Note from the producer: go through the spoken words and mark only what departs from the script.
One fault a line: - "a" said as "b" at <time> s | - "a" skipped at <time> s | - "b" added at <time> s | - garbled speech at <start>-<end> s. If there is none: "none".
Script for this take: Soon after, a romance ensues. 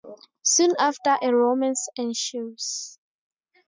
none